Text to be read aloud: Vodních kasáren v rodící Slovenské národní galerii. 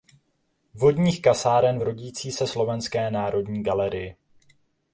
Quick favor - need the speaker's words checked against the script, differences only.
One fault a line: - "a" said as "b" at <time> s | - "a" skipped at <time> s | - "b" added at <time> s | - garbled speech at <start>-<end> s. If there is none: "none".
- "se" added at 2.3 s